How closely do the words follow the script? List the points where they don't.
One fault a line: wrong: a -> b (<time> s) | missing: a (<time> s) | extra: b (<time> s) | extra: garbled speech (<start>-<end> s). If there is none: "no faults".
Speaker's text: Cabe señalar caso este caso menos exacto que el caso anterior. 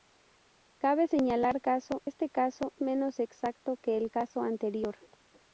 no faults